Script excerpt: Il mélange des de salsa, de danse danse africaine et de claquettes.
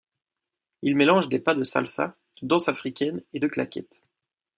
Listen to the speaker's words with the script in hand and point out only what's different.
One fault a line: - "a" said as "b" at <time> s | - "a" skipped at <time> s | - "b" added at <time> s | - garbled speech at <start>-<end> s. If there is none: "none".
- "pas" added at 1.4 s
- "danse" skipped at 2.7 s